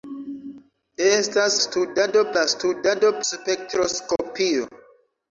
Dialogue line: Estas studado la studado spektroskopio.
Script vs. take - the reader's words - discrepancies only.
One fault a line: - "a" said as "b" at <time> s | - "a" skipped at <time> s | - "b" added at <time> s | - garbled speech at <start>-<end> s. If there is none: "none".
none